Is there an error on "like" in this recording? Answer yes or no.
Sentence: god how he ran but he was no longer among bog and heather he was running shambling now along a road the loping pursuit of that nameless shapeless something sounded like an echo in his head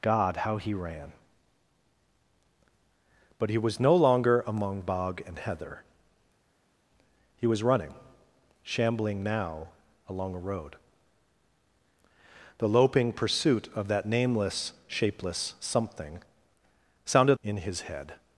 yes